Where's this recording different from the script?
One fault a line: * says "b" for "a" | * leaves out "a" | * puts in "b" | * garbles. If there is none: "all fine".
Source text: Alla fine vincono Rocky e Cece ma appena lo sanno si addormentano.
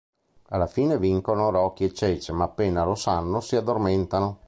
all fine